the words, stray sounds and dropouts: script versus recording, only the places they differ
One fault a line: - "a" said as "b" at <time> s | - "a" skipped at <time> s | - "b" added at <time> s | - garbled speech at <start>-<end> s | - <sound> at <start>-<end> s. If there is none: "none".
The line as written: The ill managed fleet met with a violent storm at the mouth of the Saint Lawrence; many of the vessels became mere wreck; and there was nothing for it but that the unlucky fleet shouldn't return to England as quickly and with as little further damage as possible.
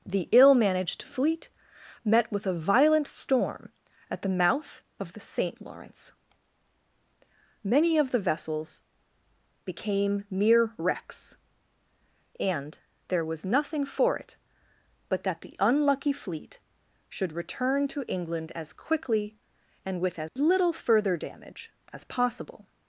- "wreck" said as "wrecks" at 10.8 s
- "shouldn't" said as "should" at 17.1 s
- dropout at 20.3-20.4 s